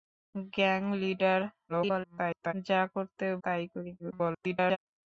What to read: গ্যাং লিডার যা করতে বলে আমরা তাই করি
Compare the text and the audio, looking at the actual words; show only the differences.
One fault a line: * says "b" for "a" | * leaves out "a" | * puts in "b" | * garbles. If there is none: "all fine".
* garbles
* leaves out "বলে আমরা"
* garbles